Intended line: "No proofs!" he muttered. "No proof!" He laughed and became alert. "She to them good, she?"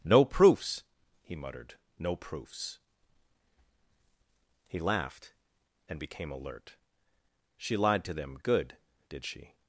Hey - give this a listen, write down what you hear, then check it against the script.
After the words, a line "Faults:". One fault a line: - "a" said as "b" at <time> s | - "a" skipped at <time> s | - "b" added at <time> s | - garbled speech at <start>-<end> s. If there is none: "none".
"No proofs!" he muttered. "No proofs!" He laughed and became alert. "She lied to them good, did she?"
Faults:
- "proof" said as "proofs" at 2.1 s
- "lied" added at 7.8 s
- "did" added at 9.1 s